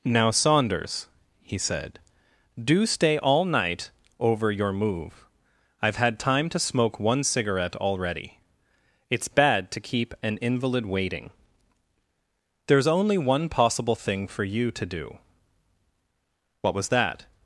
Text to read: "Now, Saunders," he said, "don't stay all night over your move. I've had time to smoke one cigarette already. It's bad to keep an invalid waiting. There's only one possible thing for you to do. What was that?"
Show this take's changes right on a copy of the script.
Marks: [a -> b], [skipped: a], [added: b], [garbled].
"Now, Saunders," he said, ["don't -> do] stay all night over your move. I've had time to smoke one cigarette already. It's bad to keep an invalid waiting. There's only one possible thing for you to do. What was that?"